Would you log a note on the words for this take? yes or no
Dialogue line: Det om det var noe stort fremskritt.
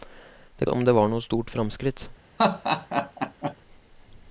no